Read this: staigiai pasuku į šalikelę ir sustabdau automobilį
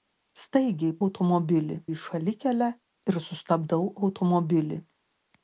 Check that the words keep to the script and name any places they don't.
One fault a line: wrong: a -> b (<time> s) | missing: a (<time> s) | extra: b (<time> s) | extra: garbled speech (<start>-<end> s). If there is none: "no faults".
wrong: pasuku -> automobilį (1.1 s)